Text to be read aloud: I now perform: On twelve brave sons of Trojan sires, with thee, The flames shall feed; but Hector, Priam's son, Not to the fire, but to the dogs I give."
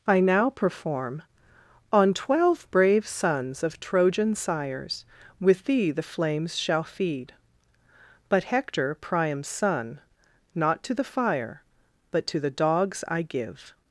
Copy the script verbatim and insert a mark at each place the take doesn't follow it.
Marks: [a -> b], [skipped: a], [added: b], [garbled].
I now perform: On twelve brave sons of Trojan sires, with thee, The flames shall feed; but Hector, Priam's son, Not to the fire, but to the dogs I give."